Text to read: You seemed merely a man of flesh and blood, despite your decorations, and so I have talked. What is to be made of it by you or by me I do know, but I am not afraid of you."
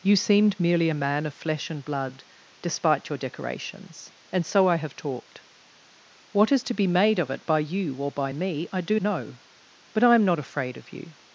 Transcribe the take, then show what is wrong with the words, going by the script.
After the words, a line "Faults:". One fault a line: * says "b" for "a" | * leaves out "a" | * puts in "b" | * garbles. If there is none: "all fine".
You seemed merely a man of flesh and blood, despite your decorations, and so I have talked. What is to be made of it by you or by me I do know, but I am not afraid of you."
Faults:
all fine